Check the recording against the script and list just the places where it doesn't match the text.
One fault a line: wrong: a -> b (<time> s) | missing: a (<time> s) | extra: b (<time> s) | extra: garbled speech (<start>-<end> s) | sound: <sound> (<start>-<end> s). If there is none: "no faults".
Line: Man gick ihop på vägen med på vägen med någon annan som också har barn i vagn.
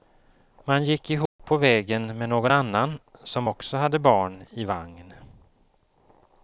sound: dropout (1.3-1.4 s)
missing: på vägen med (2.3 s)
wrong: har -> hade (3.8 s)